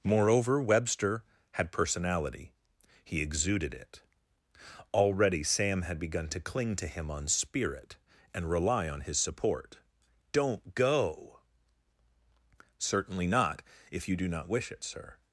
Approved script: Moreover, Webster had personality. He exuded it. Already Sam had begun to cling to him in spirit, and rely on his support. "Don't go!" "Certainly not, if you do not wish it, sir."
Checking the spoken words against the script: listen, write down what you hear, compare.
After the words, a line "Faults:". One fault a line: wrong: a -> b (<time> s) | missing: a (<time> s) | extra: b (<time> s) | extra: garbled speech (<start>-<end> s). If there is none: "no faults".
Moreover, Webster had personality. He exuded it. Already Sam had begun to cling to him on spirit, and rely on his support. "Don't go!" "Certainly not, if you do not wish it, sir."
Faults:
wrong: in -> on (7.1 s)